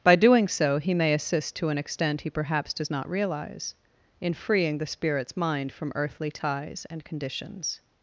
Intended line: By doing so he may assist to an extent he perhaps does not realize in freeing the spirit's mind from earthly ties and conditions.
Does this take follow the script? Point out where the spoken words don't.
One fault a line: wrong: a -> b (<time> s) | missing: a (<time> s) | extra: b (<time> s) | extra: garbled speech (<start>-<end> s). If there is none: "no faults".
no faults